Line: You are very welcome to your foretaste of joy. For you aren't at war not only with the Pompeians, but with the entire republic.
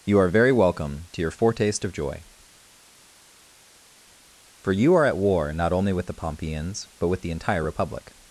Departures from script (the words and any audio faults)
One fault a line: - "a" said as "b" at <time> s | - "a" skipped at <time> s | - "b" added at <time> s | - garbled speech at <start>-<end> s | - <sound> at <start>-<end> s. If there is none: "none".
- "aren't" said as "are" at 4.9 s